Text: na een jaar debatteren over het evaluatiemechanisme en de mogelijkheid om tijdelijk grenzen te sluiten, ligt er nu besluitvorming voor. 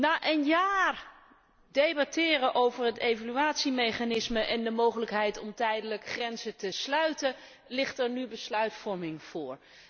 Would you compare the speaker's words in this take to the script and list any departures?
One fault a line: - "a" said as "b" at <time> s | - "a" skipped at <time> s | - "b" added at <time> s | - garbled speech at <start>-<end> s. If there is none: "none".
none